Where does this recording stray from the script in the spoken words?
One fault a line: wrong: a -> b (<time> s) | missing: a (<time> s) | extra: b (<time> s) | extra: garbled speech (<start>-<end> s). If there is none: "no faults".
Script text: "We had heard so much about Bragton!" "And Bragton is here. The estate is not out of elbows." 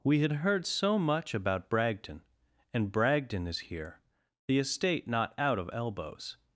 missing: is (5.1 s)